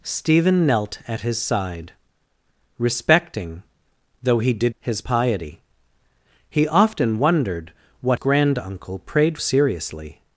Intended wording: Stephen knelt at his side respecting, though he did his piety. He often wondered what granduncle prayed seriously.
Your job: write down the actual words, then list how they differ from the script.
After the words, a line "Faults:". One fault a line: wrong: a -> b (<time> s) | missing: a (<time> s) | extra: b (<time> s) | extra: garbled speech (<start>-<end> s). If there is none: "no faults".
Stephen knelt at his side respecting, though he did his piety. He often wondered what granduncle prayed seriously.
Faults:
no faults